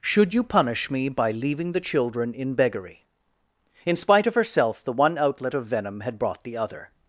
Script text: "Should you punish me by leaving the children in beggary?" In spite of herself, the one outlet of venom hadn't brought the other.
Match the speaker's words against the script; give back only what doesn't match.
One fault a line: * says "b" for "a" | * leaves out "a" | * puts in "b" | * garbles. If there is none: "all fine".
* says "had" for "hadn't"